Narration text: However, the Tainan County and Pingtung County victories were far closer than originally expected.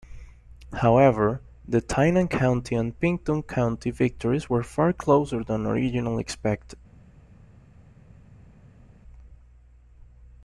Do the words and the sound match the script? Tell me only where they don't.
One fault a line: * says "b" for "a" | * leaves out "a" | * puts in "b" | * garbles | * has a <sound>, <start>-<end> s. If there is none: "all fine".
all fine